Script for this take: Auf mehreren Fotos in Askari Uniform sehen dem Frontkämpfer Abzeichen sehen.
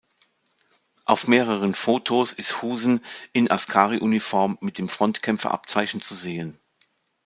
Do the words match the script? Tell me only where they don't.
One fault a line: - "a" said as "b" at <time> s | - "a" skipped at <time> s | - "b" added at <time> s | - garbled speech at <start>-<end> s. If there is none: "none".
- "ist Husen" added at 2.3 s
- "sehen" said as "mit" at 4.6 s
- "zu" added at 6.0 s